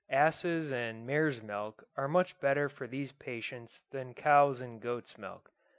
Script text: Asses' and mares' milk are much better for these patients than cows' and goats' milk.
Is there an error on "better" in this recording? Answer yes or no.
no